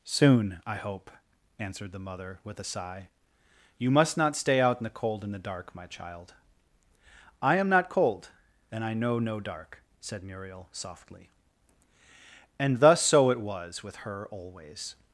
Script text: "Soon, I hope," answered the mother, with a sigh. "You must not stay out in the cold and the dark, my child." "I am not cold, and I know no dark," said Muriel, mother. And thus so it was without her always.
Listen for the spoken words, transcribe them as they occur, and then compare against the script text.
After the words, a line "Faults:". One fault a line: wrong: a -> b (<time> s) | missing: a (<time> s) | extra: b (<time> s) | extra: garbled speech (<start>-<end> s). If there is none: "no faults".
"Soon, I hope," answered the mother, with a sigh. "You must not stay out in the cold and the dark, my child." "I am not cold, and I know no dark," said Muriel, softly. And thus so it was with her always.
Faults:
wrong: mother -> softly (10.7 s)
wrong: without -> with (13.8 s)